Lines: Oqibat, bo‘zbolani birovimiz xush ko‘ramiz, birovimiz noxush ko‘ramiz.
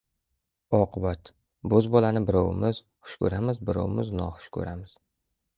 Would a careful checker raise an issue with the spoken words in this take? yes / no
no